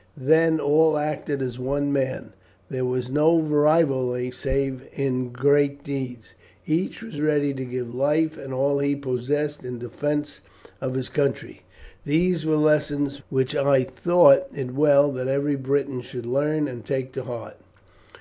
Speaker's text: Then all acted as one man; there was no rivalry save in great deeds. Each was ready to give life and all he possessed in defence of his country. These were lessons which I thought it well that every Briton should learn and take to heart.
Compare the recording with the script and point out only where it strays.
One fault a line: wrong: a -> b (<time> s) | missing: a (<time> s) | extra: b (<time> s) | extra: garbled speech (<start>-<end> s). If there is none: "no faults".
no faults